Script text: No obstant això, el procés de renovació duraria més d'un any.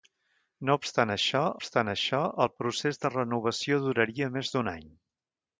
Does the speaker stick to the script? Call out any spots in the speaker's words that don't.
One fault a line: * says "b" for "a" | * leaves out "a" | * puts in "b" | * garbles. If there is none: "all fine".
* puts in "obstant això"